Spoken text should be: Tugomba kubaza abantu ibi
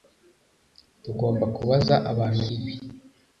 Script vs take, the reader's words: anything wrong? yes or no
no